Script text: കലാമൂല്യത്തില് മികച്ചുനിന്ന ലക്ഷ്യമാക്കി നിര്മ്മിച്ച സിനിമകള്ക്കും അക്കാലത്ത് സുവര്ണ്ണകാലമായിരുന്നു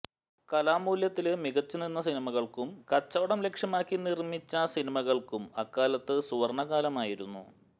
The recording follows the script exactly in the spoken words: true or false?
false